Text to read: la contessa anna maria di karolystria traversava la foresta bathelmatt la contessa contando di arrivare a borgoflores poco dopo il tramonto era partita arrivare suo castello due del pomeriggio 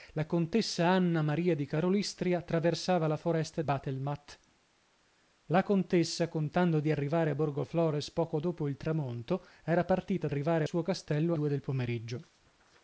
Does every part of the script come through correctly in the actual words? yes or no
yes